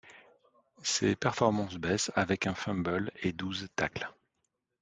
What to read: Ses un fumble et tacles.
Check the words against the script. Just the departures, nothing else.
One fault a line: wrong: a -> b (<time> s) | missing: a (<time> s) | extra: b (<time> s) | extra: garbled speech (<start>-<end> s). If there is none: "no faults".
extra: performances baissent avec (1.1 s)
extra: douze (3.3 s)